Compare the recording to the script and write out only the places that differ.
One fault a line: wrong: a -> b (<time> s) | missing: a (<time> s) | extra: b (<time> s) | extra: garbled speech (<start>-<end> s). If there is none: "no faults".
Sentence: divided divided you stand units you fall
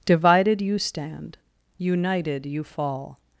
missing: divided (0.6 s)
wrong: units -> united (1.8 s)